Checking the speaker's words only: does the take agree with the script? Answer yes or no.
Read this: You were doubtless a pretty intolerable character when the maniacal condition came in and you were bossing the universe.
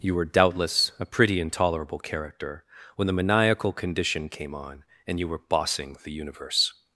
no